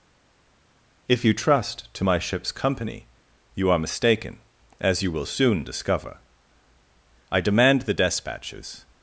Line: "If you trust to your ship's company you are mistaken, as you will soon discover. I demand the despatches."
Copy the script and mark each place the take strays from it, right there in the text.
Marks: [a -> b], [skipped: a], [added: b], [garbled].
"If you trust to [your -> my] ship's company you are mistaken, as you will soon discover. I demand the despatches."